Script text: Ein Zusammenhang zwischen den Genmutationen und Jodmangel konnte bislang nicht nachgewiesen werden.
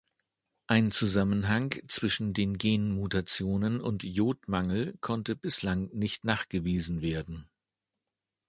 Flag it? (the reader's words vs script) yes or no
no